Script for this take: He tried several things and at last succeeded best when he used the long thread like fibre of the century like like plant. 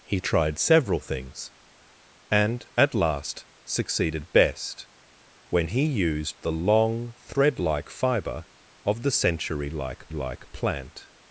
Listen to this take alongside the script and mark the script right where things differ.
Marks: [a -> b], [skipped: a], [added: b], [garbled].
He tried several things and at last succeeded best when he used the long thread like fibre of the century like like plant.